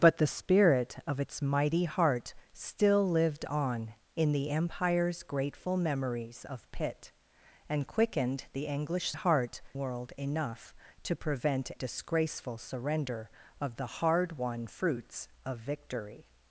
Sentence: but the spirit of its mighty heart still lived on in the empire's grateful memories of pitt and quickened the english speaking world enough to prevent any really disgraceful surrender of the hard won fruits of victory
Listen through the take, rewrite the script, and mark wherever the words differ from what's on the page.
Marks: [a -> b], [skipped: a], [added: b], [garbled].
but the spirit of its mighty heart still lived on in the empire's grateful memories of pitt and quickened the english [speaking -> heart] world enough to prevent [skipped: any really] disgraceful surrender of the hard won fruits of victory